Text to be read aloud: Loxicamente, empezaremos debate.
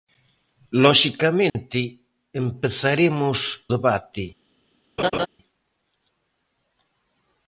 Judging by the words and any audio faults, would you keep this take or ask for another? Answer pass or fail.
fail